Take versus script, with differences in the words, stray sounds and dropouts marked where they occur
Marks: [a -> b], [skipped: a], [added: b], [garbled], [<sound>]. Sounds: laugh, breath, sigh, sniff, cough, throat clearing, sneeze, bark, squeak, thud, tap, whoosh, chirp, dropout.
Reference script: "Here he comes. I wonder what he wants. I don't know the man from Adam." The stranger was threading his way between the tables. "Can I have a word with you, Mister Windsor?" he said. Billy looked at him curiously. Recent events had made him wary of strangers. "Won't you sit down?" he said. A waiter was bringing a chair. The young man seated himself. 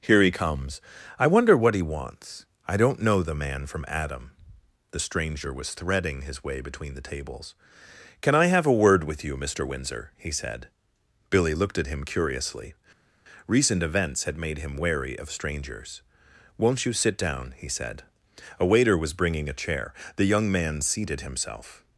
"Here he comes. I wonder what he wants. I don't know the man from Adam." The stranger was threading his way between the tables. "Can I have a word with you, Mister Windsor?" he said. Billy looked at him curiously. Recent events had made him wary of strangers. "Won't you sit down?" he said. A waiter was bringing a chair. The young man seated himself.